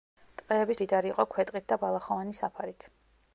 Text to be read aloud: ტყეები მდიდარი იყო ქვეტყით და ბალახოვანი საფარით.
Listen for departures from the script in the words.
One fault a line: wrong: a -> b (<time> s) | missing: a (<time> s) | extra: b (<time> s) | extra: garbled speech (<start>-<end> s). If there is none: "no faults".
no faults